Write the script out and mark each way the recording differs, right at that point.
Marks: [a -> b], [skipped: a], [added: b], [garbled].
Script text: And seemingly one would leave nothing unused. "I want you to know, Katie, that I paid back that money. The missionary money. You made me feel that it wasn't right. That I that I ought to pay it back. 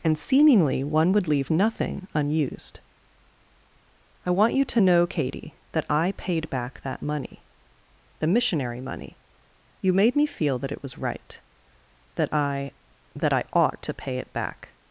And seemingly one would leave nothing unused. "I want you to know, Katie, that I paid back that money. The missionary money. You made me feel that it [wasn't -> was] right. That I that I ought to pay it back.